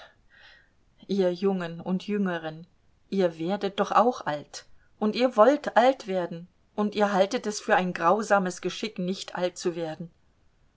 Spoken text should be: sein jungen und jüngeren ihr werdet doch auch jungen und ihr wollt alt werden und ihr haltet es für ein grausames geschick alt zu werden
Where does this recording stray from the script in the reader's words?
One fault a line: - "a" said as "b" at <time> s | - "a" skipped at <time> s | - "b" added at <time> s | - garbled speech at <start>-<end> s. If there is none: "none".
- "sein" said as "ihr" at 1.1 s
- "jungen" said as "alt" at 4.2 s
- "nicht" added at 9.0 s